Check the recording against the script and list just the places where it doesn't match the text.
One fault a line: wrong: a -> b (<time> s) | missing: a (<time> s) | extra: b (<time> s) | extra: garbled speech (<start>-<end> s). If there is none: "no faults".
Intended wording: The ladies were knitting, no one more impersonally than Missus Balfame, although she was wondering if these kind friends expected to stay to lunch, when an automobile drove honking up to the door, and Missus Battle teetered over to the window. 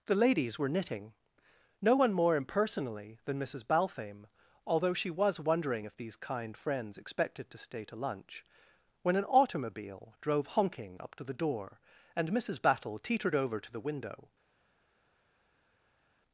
no faults